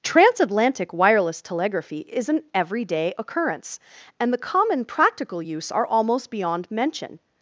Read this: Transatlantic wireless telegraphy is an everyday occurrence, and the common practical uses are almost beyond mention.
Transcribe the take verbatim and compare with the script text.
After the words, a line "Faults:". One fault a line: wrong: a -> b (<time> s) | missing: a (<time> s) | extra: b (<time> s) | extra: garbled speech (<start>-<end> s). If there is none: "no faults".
Transatlantic wireless telegraphy is an everyday occurrence, and the common practical use are almost beyond mention.
Faults:
wrong: uses -> use (5.4 s)